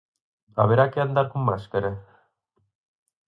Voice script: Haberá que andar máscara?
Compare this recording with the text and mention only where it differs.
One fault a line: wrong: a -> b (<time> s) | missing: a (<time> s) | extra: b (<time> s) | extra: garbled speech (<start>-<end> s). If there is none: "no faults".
extra: con (1.3 s)